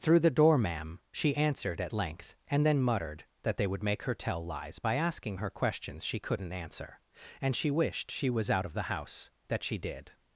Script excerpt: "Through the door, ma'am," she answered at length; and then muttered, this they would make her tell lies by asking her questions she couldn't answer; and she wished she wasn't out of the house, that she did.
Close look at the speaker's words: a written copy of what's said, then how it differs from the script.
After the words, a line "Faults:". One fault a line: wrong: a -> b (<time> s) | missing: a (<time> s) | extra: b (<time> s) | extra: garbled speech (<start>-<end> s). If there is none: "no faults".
"Through the door, ma'am," she answered at length; and then muttered, that they would make her tell lies by asking her questions she couldn't answer; and she wished she was out of the house, that she did.
Faults:
wrong: this -> that (3.4 s)
wrong: wasn't -> was (8.3 s)